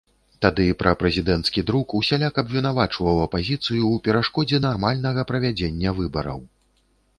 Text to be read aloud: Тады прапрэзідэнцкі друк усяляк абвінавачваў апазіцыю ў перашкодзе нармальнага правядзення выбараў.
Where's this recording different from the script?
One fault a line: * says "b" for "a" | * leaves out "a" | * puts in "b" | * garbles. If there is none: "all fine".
all fine